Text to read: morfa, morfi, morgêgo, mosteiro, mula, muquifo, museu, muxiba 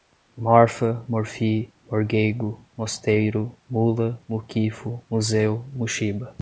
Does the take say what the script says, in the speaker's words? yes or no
yes